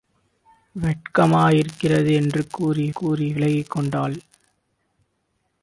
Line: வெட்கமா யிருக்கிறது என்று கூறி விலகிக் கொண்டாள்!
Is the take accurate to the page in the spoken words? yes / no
no